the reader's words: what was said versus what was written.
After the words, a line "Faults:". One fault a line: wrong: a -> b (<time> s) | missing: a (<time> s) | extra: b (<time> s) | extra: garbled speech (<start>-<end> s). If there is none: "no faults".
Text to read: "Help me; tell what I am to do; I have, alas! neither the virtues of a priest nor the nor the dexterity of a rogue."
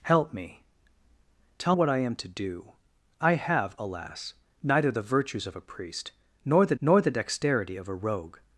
"Help me; tell what I am to do; I have, alas! neither the virtues of a priest nor the nor the dexterity of a rogue."
Faults:
no faults